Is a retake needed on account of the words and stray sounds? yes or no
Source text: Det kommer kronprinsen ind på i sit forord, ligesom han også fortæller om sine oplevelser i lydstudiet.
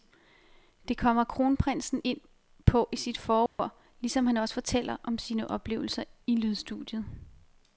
yes